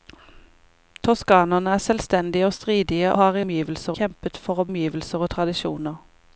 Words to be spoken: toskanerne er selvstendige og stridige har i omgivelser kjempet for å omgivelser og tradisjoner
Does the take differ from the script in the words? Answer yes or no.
no